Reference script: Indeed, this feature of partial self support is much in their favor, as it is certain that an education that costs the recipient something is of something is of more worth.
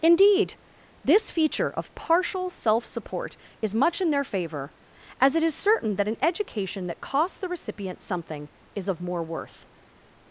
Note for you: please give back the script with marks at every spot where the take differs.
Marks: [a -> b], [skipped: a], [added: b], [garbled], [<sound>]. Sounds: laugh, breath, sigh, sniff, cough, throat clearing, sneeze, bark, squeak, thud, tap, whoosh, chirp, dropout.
Indeed, this feature of partial self support is much in their favor, as it is certain that an education that costs the recipient something is of [skipped: something is of] more worth.